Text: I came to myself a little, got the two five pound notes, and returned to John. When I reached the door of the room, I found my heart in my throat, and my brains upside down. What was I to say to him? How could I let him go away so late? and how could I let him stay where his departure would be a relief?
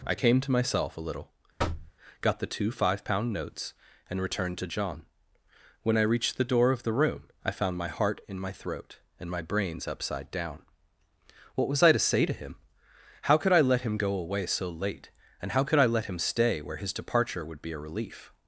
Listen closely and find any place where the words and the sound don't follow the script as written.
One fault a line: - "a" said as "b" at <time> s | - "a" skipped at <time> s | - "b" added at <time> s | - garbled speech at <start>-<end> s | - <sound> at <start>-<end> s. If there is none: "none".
- thud at 1.6-1.9 s